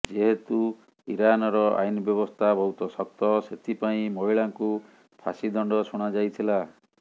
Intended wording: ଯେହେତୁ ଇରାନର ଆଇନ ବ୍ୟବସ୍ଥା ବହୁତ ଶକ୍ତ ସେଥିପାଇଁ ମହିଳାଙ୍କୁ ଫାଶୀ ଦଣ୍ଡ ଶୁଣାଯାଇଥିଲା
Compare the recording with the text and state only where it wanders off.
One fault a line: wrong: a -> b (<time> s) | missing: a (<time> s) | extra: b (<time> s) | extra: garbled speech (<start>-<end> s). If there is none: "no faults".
no faults